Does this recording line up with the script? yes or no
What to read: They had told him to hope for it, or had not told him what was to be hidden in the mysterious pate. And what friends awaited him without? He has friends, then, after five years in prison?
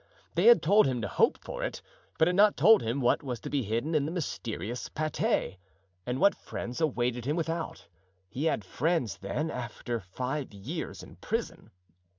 no